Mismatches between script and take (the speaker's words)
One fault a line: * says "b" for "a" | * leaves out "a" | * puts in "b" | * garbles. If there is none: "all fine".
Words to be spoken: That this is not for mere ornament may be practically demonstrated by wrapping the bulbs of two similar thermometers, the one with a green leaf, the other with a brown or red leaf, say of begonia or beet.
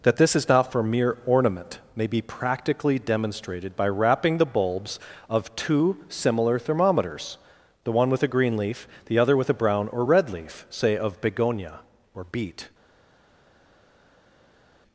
all fine